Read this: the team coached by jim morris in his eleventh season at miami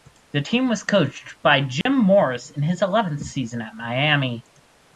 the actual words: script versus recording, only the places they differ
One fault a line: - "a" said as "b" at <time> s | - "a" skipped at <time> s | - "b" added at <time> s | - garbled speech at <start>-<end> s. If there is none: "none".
- "was" added at 0.7 s